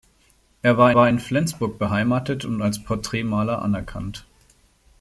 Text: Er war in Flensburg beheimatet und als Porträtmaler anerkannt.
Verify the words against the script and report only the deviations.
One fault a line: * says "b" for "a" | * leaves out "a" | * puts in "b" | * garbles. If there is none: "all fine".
* puts in "war"